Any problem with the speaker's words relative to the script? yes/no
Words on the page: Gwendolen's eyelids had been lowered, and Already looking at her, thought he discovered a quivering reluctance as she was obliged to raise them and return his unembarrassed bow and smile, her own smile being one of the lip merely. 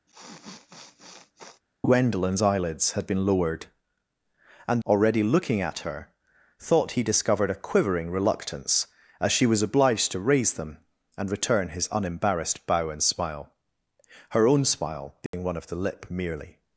no